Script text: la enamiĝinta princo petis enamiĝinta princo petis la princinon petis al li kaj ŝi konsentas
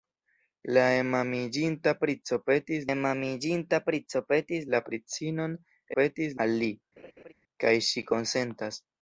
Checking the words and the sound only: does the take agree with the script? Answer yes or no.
no